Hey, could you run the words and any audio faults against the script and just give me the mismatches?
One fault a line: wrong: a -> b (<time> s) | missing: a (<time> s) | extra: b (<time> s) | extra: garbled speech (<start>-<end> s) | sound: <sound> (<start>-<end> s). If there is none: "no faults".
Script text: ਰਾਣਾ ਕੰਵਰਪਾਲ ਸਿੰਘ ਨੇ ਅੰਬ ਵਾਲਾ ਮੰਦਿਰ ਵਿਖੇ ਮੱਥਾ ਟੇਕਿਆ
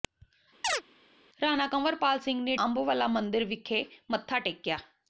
sound: chirp (0.6-0.8 s)